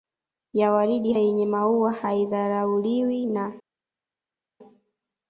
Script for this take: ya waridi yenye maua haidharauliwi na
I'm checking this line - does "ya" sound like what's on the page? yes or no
yes